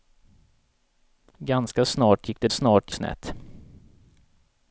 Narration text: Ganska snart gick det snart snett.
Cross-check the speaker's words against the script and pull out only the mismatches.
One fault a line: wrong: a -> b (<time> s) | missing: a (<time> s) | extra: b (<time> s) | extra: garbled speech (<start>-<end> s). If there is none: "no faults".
no faults